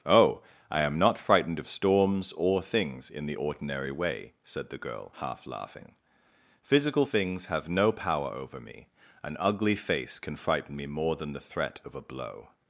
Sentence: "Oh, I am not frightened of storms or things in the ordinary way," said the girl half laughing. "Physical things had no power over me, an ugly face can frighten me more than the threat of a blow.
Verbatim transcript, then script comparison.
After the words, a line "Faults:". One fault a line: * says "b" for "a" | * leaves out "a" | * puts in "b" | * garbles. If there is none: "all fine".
"Oh, I am not frightened of storms or things in the ordinary way," said the girl half laughing. "Physical things have no power over me, an ugly face can frighten me more than the threat of a blow.
Faults:
* says "have" for "had"